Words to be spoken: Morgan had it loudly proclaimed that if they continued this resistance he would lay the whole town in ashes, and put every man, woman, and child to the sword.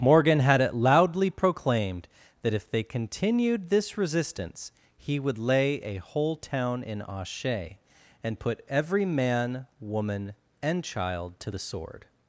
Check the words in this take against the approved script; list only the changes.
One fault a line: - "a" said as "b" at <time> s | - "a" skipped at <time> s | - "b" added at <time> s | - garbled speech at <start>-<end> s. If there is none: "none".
- "the" said as "a" at 5.8 s
- "ashes" said as "ashe" at 7.1 s